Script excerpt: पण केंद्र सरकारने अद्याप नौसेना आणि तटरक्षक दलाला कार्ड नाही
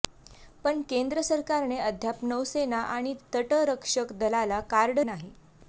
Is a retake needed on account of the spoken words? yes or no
no